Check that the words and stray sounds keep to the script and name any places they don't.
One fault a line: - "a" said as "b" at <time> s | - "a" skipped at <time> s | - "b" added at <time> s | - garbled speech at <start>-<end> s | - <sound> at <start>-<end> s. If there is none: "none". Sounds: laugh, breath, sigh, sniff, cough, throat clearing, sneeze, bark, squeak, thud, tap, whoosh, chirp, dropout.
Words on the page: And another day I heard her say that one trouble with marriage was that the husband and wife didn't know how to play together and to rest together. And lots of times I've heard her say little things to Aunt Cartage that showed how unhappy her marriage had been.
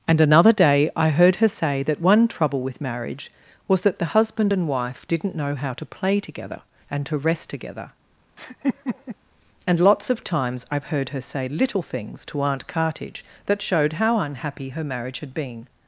- laugh at 8.4-9.2 s